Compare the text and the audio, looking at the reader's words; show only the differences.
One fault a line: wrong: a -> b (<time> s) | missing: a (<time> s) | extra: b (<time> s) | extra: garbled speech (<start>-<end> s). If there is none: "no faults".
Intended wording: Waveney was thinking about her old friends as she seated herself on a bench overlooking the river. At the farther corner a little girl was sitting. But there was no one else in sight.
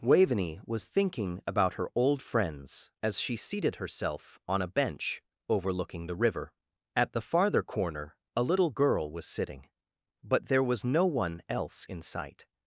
no faults